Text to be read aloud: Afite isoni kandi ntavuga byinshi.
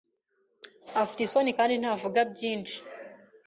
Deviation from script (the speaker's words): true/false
false